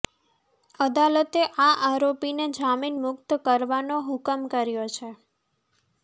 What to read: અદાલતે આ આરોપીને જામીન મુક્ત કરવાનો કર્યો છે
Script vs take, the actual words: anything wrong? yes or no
yes